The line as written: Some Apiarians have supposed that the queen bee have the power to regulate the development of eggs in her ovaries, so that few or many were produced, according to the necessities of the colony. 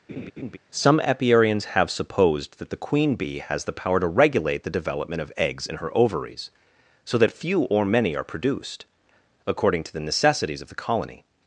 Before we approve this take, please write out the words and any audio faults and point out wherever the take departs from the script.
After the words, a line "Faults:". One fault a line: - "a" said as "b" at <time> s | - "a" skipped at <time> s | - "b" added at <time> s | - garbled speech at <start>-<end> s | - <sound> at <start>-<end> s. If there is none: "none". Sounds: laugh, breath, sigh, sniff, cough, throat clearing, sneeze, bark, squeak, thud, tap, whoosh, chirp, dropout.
Some Apiarians have supposed that the queen bee has the power to regulate the development of eggs in her ovaries, so that few or many are produced, according to the necessities of the colony.
Faults:
- laugh at 0.1-0.6 s
- "have" said as "has" at 3.4 s
- "were" said as "are" at 8.1 s